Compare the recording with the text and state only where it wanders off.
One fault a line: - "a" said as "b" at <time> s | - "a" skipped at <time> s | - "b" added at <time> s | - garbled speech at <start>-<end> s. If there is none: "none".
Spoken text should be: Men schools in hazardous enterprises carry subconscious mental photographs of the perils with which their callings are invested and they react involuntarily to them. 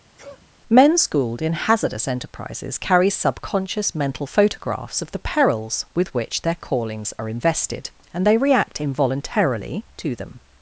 - "schools" said as "schooled" at 1.0 s